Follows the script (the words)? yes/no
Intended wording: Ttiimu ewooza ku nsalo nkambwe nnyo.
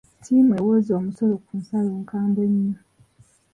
no